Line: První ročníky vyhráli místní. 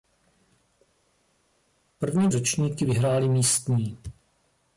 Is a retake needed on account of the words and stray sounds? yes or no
no